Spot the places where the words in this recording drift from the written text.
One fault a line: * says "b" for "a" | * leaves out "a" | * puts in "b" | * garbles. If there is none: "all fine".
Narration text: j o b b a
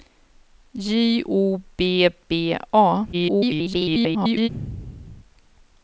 * garbles